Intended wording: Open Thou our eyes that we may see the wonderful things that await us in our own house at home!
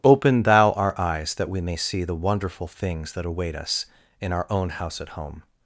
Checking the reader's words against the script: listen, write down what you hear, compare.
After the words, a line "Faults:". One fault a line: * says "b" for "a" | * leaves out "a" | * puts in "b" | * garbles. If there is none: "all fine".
Open Thou our eyes that we may see the wonderful things that await us in our own house at home!
Faults:
all fine